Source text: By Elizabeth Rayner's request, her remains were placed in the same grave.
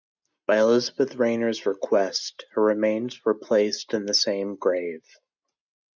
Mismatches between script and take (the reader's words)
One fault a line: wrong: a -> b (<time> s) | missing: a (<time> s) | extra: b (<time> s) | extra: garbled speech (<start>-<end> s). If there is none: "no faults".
no faults